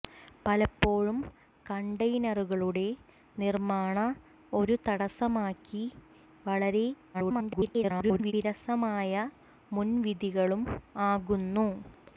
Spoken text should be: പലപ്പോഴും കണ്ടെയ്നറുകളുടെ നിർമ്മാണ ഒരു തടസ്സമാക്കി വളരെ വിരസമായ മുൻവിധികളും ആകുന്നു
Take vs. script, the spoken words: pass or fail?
fail